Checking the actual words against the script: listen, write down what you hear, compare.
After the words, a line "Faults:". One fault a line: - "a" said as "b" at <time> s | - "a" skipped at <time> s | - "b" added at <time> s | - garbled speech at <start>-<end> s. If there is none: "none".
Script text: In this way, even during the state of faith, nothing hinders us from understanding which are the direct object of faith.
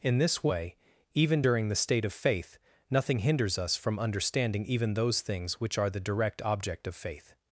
In this way, even during the state of faith, nothing hinders us from understanding even those things which are the direct object of faith.
Faults:
- "even those things" added at 4.6 s